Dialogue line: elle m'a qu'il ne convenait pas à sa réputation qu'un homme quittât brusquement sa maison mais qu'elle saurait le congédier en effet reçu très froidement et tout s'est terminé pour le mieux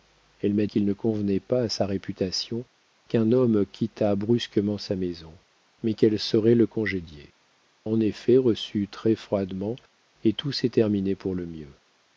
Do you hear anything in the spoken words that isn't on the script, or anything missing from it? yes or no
no